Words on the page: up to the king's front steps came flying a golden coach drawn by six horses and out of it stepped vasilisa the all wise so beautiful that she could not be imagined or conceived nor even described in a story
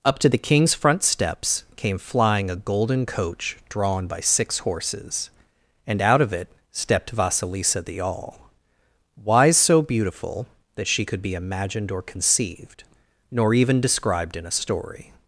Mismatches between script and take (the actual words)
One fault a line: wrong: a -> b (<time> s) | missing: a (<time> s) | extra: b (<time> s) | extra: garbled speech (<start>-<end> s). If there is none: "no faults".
missing: not (11.2 s)